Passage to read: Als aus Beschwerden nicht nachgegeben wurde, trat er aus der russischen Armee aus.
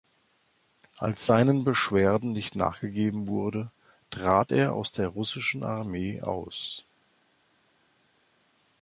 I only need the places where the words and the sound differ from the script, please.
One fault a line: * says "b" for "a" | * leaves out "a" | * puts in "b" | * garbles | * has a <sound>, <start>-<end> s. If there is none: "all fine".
* says "seinen" for "aus"